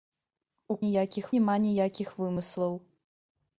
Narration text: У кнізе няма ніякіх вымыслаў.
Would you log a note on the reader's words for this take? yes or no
yes